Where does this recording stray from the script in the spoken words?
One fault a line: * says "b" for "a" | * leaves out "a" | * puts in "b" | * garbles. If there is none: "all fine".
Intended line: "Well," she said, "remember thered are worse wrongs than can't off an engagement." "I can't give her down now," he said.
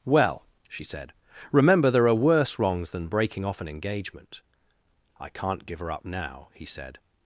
* says "there" for "thered"
* says "breaking" for "can't"
* says "up" for "down"